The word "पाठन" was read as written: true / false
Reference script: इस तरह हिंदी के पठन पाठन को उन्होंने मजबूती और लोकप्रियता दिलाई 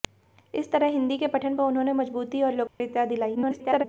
false